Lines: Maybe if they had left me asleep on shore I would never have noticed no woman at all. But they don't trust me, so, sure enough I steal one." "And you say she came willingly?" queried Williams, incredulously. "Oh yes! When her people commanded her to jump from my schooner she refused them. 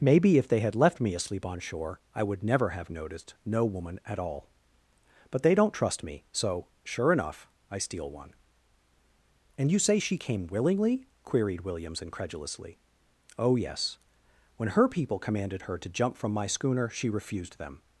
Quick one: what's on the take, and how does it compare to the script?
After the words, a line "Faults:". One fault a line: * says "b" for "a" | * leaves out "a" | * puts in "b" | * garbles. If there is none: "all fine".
Maybe if they had left me asleep on shore I would never have noticed no woman at all. But they don't trust me, so, sure enough I steal one." "And you say she came willingly?" queried Williams, incredulously. "Oh yes! When her people commanded her to jump from my schooner she refused them.
Faults:
all fine